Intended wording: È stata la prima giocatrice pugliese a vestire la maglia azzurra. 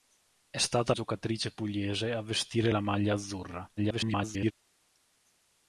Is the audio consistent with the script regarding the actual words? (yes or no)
no